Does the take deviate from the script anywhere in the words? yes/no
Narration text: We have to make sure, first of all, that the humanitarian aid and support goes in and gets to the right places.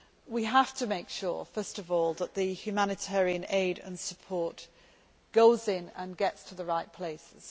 no